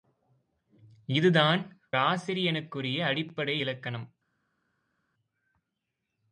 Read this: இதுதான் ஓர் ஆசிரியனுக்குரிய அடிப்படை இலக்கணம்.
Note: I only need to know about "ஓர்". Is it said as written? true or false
false